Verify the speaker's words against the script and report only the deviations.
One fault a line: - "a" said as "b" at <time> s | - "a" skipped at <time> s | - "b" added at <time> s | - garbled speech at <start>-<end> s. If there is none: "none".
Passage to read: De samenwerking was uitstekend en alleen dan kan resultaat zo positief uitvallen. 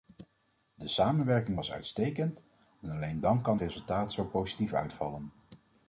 none